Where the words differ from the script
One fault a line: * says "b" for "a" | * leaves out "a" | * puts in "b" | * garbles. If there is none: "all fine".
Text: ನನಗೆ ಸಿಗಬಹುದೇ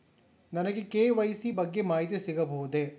* puts in "ಕೆ.ವೈ.ಸಿ ಬಗ್ಗೆ ಮಾಹಿತಿ"